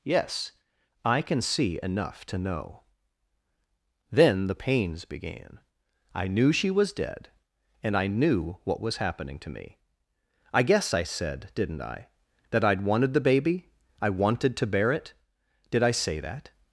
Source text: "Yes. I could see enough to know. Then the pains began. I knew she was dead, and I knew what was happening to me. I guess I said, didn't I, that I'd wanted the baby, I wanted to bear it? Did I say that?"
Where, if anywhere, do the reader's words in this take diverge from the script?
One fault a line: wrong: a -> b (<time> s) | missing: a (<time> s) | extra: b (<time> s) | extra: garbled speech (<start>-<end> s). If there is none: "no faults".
wrong: could -> can (1.2 s)